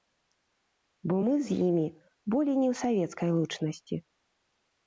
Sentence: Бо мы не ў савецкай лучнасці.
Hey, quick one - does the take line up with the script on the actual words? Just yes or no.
no